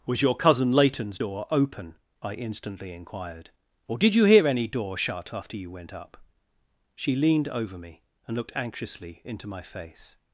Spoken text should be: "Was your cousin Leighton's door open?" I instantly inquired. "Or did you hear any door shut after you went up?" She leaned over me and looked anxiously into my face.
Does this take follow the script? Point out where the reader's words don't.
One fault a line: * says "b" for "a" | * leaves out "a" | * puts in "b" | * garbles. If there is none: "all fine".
all fine